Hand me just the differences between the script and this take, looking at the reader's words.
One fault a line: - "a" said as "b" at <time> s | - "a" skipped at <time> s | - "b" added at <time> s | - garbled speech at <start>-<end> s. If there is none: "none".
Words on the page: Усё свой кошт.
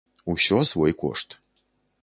none